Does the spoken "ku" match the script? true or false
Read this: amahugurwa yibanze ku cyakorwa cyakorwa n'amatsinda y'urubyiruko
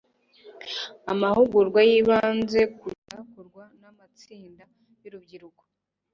true